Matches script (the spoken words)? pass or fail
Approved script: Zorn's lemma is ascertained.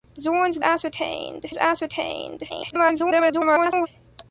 fail